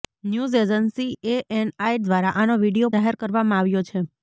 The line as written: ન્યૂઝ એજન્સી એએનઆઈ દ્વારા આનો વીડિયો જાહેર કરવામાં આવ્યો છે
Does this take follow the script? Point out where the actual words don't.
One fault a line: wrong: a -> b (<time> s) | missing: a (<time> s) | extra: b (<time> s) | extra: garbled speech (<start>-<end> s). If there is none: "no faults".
no faults